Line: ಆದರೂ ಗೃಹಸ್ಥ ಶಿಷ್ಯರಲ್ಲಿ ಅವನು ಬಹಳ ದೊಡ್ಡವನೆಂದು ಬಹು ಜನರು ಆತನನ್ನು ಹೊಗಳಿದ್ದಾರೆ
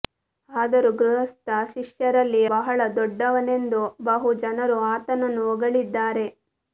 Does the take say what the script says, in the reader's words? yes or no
no